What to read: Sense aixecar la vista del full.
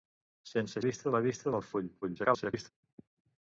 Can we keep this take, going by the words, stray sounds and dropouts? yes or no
no